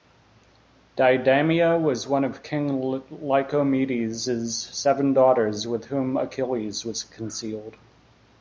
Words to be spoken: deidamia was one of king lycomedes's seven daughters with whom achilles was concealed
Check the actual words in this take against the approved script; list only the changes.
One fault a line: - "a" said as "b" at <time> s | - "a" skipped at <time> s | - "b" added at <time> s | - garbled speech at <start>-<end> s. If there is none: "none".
none